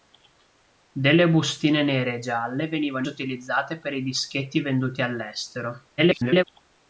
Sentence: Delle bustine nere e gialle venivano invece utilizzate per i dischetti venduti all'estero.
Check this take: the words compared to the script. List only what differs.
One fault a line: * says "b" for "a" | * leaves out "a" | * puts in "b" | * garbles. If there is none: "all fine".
* leaves out "invece"
* garbles